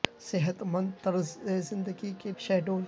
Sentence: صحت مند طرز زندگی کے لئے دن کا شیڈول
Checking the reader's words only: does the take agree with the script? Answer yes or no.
no